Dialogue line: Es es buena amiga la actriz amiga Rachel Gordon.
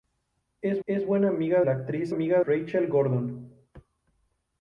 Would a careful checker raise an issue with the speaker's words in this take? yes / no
no